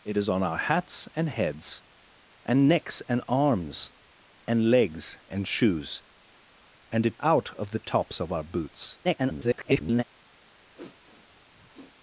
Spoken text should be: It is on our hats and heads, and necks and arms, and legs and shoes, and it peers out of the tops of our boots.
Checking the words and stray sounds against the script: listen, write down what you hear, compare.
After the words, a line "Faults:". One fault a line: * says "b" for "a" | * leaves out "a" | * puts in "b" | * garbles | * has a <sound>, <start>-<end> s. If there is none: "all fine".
It is on our hats and heads, and necks and arms, and legs and shoes, and it out of the tops of our boots. [garbled]
Faults:
* leaves out "peers"
* garbles
* has a sniff, 10.7-11.9 s